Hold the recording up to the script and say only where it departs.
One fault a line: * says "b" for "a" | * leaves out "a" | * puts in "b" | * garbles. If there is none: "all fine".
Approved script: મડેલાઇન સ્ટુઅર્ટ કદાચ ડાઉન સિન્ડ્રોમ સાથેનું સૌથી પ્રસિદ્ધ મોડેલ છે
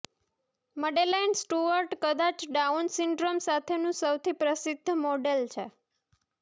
all fine